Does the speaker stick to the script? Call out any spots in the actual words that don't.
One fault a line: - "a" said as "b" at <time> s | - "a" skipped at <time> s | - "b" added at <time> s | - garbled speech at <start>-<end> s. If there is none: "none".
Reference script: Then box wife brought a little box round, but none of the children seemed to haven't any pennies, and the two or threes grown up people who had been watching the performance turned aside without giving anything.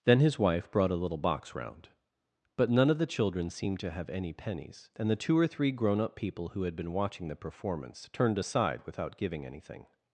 - "box" said as "his" at 0.2 s
- "haven't" said as "have" at 3.9 s
- "threes" said as "three" at 5.5 s